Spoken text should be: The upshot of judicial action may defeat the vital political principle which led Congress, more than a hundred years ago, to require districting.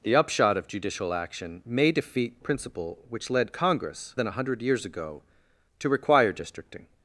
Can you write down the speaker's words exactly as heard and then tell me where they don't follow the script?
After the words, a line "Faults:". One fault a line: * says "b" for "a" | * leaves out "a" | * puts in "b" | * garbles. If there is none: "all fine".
The upshot of judicial action may defeat principle which led Congress, than a hundred years ago, to require districting.
Faults:
* leaves out "the vital political"
* leaves out "more"